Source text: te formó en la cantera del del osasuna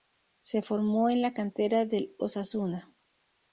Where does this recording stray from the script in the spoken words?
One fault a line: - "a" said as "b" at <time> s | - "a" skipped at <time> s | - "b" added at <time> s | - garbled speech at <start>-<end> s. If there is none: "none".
- "te" said as "se" at 0.4 s
- "del" skipped at 2.1 s